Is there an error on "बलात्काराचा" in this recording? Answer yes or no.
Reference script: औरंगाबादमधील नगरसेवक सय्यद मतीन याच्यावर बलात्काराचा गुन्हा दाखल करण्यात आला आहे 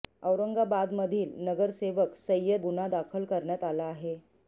yes